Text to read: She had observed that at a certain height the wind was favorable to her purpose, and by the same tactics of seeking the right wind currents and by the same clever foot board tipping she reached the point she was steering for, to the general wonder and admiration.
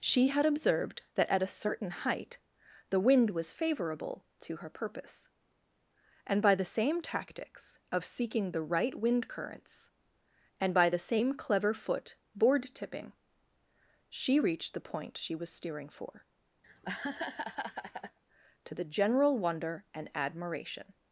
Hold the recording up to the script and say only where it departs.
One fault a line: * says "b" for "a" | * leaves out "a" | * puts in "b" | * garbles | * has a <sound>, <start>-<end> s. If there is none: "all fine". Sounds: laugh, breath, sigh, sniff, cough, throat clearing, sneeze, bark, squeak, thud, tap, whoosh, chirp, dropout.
* has a laugh, 16.6-18.2 s